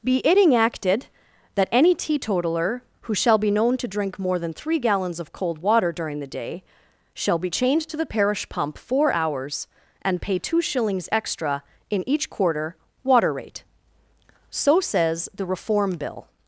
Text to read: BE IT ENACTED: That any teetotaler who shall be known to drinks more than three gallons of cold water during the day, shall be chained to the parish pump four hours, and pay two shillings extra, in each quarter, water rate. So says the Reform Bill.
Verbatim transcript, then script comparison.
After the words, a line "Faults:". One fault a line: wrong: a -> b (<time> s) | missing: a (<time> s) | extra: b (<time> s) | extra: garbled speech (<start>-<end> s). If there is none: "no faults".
BE IT ENACTED: That any teetotaler who shall be known to drink more than three gallons of cold water during the day, shall be chained to the parish pump four hours, and pay two shillings extra, in each quarter, water rate. So says the Reform Bill.
Faults:
wrong: drinks -> drink (3.9 s)